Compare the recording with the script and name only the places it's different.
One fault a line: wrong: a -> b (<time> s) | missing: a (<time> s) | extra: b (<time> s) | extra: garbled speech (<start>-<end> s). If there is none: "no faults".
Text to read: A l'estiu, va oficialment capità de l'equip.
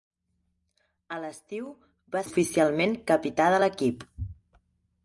no faults